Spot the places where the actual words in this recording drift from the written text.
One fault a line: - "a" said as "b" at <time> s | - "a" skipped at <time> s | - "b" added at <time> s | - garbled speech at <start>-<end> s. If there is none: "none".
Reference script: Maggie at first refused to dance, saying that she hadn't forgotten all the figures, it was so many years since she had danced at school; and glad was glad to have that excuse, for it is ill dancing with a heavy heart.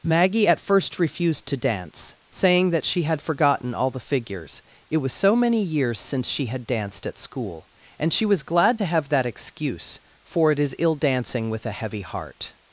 - "hadn't" said as "had" at 3.0 s
- "glad" said as "she" at 8.1 s